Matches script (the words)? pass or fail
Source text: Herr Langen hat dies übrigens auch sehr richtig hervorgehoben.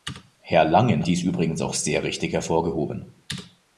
fail